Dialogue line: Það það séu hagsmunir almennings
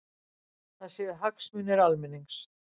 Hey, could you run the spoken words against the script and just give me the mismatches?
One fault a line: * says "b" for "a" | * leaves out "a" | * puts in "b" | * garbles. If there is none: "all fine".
* leaves out "það"